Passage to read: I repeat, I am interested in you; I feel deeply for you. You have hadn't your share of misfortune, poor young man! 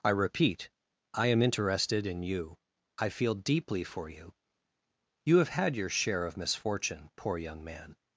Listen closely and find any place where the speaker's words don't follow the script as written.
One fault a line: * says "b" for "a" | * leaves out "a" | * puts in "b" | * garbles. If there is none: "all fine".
* says "had" for "hadn't"